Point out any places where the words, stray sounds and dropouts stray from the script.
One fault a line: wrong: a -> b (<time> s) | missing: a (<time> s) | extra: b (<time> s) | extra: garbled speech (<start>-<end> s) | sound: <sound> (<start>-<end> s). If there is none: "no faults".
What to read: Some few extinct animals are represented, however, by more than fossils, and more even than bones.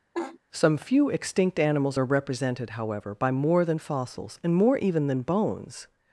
sound: laugh (0.1-0.4 s)